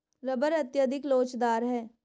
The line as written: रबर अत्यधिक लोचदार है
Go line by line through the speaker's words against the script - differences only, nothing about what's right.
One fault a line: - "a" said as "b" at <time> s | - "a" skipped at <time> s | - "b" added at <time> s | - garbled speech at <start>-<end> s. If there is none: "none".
none